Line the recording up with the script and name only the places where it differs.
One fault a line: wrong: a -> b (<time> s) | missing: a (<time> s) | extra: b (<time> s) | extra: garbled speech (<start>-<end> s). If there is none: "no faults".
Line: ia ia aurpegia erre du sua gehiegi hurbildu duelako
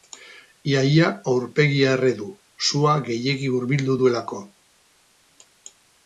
no faults